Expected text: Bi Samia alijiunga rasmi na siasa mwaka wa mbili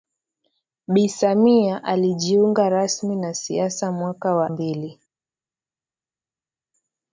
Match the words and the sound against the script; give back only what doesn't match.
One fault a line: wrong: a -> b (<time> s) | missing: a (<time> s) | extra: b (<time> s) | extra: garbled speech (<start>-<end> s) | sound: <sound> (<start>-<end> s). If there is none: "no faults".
no faults